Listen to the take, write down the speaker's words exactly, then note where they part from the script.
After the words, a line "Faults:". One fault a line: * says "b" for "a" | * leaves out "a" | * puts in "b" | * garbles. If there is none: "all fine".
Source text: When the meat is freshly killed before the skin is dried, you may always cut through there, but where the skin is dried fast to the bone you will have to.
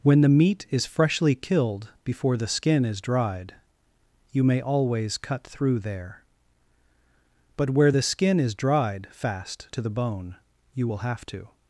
When the meat is freshly killed before the skin is dried, you may always cut through there, but where the skin is dried fast to the bone you will have to.
Faults:
all fine